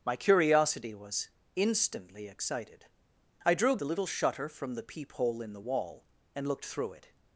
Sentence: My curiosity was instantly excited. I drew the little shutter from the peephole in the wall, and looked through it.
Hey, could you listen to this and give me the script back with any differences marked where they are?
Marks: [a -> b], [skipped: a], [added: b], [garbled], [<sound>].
My curiosity was instantly excited. I drew the little shutter from the peephole in the wall, and looked through it.